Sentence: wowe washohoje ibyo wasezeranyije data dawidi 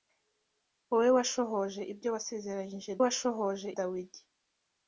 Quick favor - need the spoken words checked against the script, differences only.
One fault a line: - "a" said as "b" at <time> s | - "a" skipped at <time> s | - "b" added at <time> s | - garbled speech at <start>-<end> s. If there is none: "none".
- "data" said as "washohoje" at 3.0 s